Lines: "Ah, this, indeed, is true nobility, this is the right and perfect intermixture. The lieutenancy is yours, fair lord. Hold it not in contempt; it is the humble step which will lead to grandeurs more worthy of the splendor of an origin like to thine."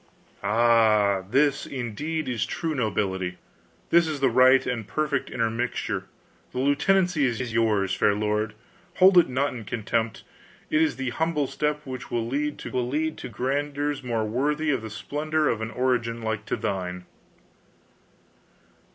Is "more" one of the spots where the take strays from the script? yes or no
no